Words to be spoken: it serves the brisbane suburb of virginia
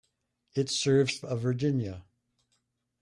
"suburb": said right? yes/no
no